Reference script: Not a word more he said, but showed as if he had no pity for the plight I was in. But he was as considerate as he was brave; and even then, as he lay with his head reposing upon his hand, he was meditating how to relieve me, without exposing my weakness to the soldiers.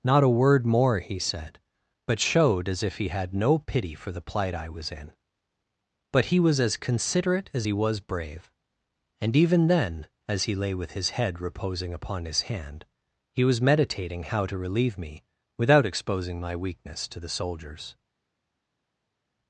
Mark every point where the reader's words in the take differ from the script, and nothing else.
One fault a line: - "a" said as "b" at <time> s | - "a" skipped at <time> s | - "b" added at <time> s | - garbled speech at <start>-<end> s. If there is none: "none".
none